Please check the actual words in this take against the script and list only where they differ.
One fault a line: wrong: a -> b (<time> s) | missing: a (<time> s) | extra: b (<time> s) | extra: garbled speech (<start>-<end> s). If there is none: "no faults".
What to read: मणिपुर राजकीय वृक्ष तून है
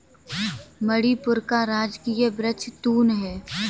extra: का (1.5 s)